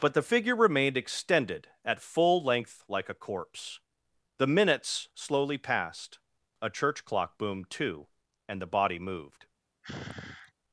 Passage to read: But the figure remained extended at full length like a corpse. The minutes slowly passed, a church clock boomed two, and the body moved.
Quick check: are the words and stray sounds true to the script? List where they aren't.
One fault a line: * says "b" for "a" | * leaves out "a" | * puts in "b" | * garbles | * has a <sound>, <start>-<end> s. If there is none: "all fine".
* has a sigh, 9.8-10.5 s